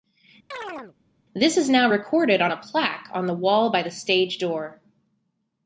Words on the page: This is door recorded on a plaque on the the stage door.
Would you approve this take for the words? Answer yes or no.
no